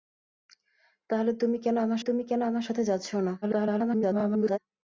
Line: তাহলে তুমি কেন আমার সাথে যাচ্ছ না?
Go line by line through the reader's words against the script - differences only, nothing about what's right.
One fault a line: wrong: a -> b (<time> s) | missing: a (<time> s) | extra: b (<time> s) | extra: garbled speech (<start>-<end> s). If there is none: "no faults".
extra: তুমি কেন আমার (2.0 s)
extra: garbled speech (3.4-4.6 s)